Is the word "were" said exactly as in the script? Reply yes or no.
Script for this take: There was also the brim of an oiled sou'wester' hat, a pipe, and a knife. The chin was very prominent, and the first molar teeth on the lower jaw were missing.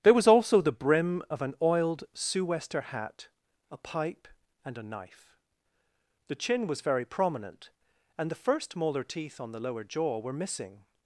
yes